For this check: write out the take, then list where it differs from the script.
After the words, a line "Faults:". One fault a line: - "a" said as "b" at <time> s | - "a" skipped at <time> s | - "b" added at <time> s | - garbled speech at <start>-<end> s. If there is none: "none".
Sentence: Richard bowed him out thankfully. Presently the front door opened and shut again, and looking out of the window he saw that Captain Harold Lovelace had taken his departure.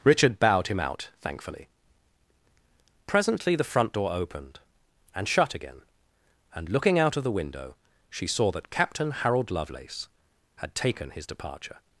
Richard bowed him out thankfully. Presently the front door opened and shut again, and looking out of the window she saw that Captain Harold Lovelace had taken his departure.
Faults:
- "he" said as "she" at 8.1 s